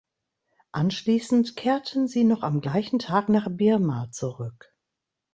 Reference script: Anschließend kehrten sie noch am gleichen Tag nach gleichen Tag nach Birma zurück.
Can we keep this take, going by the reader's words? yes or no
no